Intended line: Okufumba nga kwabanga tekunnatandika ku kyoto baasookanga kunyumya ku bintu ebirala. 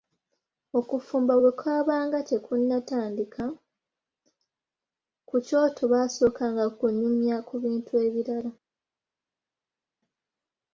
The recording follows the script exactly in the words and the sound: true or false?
false